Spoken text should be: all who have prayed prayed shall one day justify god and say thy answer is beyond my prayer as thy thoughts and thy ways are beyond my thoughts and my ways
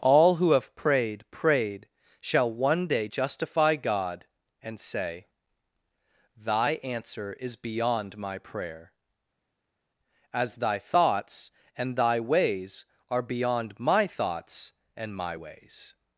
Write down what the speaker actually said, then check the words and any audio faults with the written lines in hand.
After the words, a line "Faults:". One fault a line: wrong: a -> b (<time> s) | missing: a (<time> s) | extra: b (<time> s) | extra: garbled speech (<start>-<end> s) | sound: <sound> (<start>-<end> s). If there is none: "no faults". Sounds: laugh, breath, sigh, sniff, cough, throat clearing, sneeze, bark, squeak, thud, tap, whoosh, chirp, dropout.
all who have prayed prayed shall one day justify god and say thy answer is beyond my prayer as thy thoughts and thy ways are beyond my thoughts and my ways
Faults:
no faults